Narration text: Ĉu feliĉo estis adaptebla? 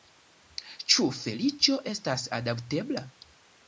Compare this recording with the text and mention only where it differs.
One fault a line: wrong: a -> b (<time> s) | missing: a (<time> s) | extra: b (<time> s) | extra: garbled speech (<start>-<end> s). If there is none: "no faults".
wrong: estis -> estas (1.9 s)